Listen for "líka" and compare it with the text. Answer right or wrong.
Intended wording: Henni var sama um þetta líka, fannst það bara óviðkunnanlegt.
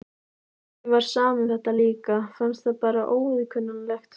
right